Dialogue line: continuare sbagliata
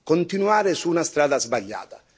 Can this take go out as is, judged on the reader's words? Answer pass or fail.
fail